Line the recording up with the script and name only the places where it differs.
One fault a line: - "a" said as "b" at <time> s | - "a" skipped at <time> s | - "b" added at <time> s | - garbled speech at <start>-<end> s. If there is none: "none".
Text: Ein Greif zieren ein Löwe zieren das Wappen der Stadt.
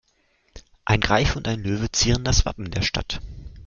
- "zieren" said as "und" at 1.4 s